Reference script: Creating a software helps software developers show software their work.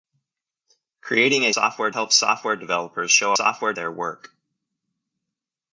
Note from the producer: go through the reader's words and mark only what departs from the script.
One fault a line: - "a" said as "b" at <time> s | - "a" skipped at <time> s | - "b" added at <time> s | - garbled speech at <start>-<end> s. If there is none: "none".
none